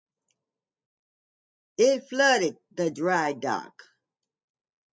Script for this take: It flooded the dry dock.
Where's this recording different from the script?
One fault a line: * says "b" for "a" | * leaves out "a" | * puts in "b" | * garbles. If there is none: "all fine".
all fine